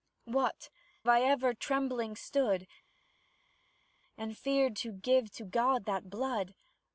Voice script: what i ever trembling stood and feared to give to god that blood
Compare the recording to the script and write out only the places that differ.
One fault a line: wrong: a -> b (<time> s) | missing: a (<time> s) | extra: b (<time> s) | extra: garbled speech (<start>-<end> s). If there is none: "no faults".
no faults